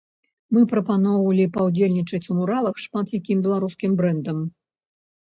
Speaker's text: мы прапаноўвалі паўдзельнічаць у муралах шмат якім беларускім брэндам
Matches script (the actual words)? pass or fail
pass